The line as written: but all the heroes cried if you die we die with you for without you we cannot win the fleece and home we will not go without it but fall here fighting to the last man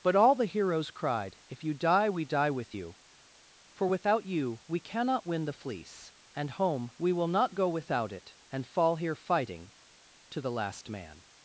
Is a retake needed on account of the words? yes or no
yes